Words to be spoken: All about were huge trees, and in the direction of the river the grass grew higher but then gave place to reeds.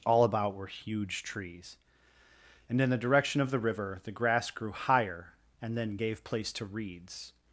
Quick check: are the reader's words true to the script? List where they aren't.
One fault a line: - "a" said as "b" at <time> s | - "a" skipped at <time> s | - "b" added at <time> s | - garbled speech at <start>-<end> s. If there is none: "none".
- "but" said as "and" at 5.6 s